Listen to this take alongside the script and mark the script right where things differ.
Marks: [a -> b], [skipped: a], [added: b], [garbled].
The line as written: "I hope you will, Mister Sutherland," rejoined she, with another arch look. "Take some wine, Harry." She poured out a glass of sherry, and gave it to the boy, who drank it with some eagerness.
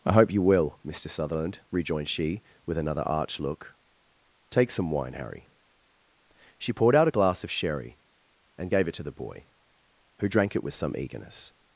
"I hope you will, Mister Sutherland," rejoined she, with another arch look. "Take some wine, Harry." She poured out a glass of sherry, and gave it to the boy, who drank it with some eagerness.